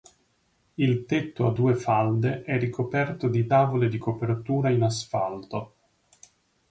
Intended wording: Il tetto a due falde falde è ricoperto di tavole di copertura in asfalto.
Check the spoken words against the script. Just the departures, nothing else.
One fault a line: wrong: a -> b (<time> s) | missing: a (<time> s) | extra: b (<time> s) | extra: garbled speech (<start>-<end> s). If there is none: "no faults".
missing: falde (2.4 s)